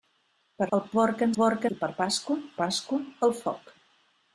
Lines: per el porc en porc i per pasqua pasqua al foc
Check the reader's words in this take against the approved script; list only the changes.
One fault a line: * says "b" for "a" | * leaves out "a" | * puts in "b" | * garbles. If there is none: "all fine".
all fine